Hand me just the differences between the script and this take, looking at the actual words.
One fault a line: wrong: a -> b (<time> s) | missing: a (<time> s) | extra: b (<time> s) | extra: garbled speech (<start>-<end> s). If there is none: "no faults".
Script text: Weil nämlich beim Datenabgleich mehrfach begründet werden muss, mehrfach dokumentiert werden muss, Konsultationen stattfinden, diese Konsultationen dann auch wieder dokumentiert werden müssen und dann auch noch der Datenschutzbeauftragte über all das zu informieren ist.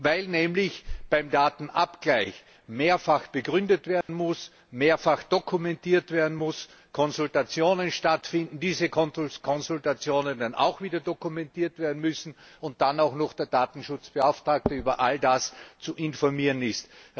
no faults